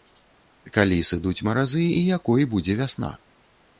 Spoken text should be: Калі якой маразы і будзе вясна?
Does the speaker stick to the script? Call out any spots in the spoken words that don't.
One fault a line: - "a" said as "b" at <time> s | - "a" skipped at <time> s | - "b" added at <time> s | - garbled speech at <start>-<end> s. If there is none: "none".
- "якой" said as "сыдуць" at 1.1 s
- "якой" added at 2.2 s